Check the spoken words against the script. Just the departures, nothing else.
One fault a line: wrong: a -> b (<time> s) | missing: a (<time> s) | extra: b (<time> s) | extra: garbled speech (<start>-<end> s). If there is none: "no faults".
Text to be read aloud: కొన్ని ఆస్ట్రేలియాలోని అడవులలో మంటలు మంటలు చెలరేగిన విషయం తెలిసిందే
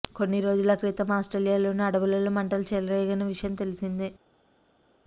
extra: రోజుల క్రితం (0.4 s)
missing: మంటలు (2.6 s)